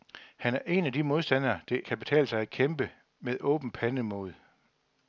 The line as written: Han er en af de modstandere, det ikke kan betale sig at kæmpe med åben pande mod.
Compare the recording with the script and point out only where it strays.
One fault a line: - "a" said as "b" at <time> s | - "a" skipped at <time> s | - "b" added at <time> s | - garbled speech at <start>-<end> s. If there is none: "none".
- "ikke" skipped at 1.8 s